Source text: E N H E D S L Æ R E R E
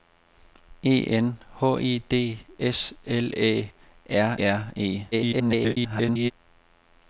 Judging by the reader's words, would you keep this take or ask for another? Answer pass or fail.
fail